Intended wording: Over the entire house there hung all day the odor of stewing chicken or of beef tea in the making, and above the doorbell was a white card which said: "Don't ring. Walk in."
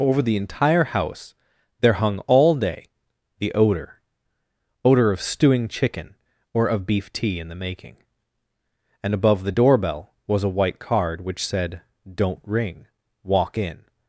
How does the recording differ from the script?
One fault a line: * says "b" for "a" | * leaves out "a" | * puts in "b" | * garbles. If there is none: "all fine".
* puts in "odor"